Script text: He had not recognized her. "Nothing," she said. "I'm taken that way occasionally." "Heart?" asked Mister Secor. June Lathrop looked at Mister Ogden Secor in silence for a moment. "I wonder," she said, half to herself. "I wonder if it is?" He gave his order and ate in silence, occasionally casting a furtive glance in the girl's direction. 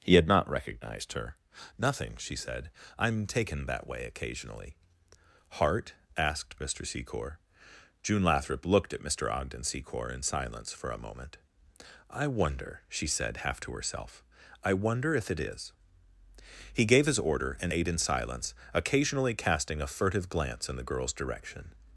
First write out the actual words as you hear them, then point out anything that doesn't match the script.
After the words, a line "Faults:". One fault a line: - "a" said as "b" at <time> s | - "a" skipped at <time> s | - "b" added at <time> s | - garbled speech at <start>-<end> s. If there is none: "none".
He had not recognized her. "Nothing," she said. "I'm taken that way occasionally." "Heart?" asked Mister Secor. June Lathrop looked at Mister Ogden Secor in silence for a moment. "I wonder," she said, half to herself. "I wonder if it is?" He gave his order and ate in silence, occasionally casting a furtive glance in the girl's direction.
Faults:
none